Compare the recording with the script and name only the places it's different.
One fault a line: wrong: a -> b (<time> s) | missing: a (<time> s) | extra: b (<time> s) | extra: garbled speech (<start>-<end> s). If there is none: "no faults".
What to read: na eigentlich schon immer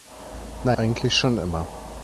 no faults